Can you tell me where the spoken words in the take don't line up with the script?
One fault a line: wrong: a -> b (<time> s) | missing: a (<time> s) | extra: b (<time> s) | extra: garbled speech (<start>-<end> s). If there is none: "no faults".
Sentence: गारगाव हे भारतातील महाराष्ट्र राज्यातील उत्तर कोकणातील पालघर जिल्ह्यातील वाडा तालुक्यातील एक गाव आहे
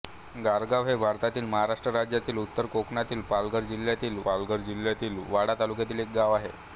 extra: पालघर जिल्ह्यातील (4.2 s)